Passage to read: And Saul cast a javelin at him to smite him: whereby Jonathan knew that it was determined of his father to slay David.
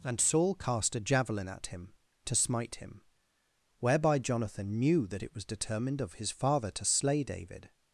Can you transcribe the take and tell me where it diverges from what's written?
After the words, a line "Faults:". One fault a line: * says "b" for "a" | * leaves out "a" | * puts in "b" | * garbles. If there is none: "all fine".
And Saul cast a javelin at him to smite him: whereby Jonathan knew that it was determined of his father to slay David.
Faults:
all fine